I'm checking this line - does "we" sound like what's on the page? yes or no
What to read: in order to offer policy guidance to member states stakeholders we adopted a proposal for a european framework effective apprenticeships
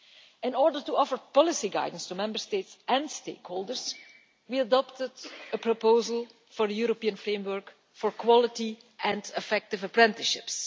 yes